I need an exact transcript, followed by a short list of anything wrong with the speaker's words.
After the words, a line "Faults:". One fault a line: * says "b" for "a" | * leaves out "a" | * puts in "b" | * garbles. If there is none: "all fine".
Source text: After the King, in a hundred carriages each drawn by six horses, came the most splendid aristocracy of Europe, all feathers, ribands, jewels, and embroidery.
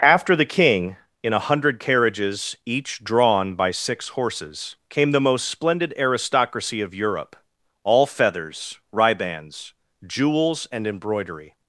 After the King, in a hundred carriages each drawn by six horses, came the most splendid aristocracy of Europe, all feathers, ribands, jewels, and embroidery.
Faults:
all fine